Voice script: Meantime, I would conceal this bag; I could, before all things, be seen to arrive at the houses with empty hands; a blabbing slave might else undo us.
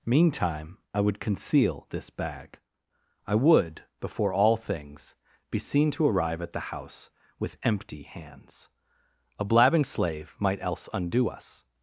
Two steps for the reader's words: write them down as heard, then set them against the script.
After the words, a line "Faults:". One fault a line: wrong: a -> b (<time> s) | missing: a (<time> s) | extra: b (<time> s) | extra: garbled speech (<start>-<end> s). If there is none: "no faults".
Meantime, I would conceal this bag; I would, before all things, be seen to arrive at the house with empty hands; a blabbing slave might else undo us.
Faults:
wrong: could -> would (3.4 s)
wrong: houses -> house (6.7 s)